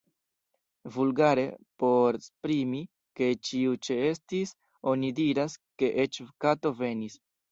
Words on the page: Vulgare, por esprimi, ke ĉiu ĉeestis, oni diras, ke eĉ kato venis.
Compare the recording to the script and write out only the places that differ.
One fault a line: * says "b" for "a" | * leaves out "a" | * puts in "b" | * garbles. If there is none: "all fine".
all fine